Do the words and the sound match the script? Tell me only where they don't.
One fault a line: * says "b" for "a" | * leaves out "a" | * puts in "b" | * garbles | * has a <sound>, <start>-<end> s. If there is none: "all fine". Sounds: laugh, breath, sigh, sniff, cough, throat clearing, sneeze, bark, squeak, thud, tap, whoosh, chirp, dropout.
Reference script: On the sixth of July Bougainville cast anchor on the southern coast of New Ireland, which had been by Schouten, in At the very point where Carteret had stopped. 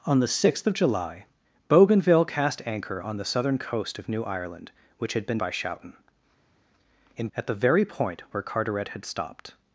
all fine